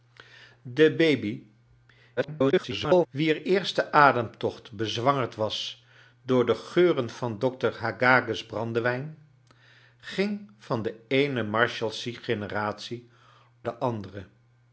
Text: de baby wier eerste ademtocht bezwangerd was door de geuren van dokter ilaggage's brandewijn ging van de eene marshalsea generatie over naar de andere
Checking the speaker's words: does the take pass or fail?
fail